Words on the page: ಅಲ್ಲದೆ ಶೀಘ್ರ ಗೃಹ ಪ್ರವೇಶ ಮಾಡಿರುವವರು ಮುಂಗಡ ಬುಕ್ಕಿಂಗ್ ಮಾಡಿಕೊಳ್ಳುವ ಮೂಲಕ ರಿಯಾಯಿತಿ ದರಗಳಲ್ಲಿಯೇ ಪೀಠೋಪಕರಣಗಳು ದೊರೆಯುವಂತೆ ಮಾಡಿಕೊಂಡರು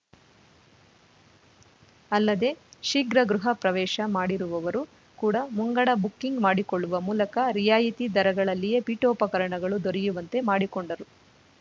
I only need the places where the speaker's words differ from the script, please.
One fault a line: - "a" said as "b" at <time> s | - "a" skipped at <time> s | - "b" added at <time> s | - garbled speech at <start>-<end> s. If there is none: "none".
- "ಕೂಡ" added at 5.2 s